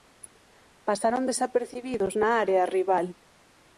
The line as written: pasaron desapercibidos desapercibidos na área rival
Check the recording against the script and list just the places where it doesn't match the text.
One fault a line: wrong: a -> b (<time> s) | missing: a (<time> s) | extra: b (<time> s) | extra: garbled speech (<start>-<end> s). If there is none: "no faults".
missing: desapercibidos (2.1 s)